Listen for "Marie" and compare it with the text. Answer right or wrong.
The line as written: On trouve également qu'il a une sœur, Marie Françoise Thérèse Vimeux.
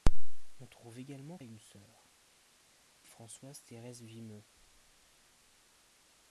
wrong